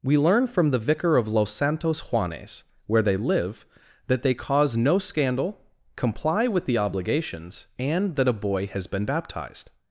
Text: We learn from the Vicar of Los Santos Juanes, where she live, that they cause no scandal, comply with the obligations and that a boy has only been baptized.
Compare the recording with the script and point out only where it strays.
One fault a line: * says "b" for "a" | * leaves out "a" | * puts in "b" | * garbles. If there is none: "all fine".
* says "they" for "she"
* leaves out "only"